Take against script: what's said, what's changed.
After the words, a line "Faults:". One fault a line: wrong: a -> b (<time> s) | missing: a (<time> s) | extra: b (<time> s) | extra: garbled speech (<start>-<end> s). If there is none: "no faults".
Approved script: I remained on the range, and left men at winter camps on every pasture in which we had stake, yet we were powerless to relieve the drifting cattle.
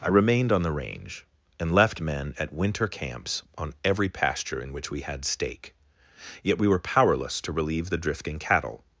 I remained on the range, and left men at winter camps on every pasture in which we had stake, yet we were powerless to relieve the drifting cattle.
Faults:
no faults